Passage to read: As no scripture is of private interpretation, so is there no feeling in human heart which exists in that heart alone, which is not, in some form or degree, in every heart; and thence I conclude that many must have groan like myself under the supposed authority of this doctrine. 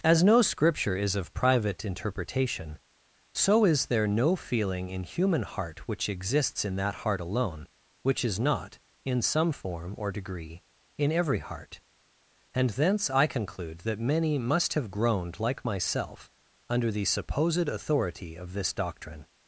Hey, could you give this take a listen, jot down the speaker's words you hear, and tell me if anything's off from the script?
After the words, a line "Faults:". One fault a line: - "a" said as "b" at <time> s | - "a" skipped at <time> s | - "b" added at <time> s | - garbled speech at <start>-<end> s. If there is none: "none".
As no scripture is of private interpretation, so is there no feeling in human heart which exists in that heart alone, which is not, in some form or degree, in every heart; and thence I conclude that many must have groaned like myself under the supposed authority of this doctrine.
Faults:
- "groan" said as "groaned" at 14.9 s